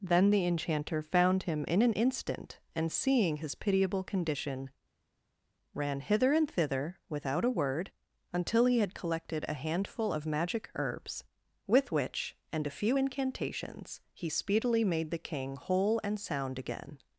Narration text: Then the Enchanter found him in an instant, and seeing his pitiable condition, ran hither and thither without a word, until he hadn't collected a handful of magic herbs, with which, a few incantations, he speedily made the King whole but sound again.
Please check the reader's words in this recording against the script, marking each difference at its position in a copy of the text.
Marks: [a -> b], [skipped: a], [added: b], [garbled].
Then the Enchanter found him in an instant, and seeing his pitiable condition, ran hither and thither without a word, until he [hadn't -> had] collected a handful of magic herbs, with which, [added: and] a few incantations, he speedily made the King whole [but -> and] sound again.